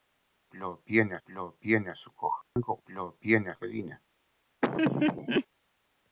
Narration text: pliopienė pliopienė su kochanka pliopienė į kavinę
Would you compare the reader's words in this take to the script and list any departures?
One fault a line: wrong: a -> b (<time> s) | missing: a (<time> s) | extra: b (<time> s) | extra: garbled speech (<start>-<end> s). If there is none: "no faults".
no faults